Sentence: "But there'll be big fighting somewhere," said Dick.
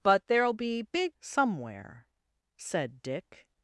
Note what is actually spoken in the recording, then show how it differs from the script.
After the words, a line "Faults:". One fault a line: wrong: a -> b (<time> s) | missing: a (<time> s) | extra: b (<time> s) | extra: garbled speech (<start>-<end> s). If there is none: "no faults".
"But there'll be big somewhere," said Dick.
Faults:
missing: fighting (1.2 s)